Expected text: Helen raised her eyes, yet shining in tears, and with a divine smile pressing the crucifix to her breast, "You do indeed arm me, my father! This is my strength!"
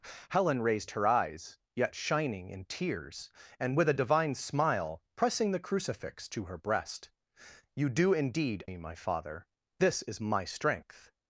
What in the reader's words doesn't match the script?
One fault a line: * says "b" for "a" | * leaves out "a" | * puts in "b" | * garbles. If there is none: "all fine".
* leaves out "arm"